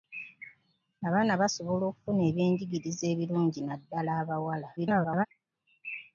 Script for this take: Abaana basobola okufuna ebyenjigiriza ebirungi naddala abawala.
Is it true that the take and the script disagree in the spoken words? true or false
true